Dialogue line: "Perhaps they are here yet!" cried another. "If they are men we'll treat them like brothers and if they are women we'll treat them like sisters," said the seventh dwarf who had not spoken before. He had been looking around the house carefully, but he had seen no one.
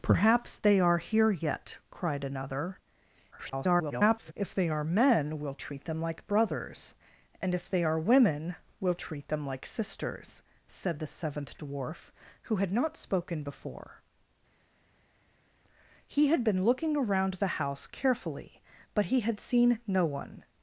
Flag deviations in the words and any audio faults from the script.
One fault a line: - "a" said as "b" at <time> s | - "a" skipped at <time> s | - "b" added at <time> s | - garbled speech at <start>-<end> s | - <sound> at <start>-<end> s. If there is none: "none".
- garbled speech at 3.3-4.3 s